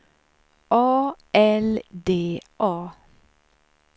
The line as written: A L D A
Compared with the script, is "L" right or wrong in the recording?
right